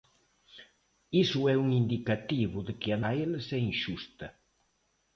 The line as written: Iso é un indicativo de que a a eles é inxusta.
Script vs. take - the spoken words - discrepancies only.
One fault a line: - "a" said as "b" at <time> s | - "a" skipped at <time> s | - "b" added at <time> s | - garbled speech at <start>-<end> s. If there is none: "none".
none